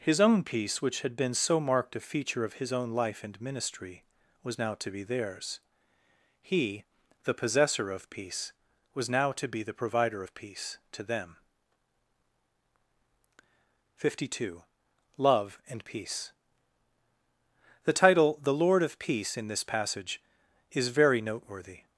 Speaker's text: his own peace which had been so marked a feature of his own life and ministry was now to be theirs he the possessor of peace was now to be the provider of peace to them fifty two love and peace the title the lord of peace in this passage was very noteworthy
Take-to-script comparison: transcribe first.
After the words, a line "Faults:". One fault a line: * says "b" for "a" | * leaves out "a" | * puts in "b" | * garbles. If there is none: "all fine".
his own peace which had been so marked a feature of his own life and ministry was now to be theirs he the possessor of peace was now to be the provider of peace to them fifty two love and peace the title the lord of peace in this passage is very noteworthy
Faults:
* says "is" for "was"